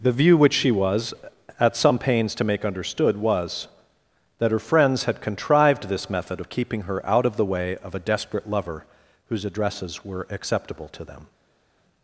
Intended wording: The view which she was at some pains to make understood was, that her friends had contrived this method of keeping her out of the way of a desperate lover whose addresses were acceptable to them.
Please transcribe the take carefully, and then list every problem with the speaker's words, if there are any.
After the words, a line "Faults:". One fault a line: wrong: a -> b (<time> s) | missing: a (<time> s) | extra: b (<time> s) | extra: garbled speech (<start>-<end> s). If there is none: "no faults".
The view which she was at some pains to make understood was, that her friends had contrived this method of keeping her out of the way of a desperate lover whose addresses were acceptable to them.
Faults:
no faults